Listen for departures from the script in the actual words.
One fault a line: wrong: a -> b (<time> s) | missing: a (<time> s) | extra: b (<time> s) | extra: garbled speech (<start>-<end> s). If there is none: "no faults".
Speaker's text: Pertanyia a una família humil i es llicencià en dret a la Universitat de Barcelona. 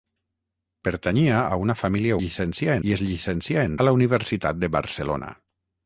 wrong: humil -> llicencià (2.2 s)
missing: dret (3.8 s)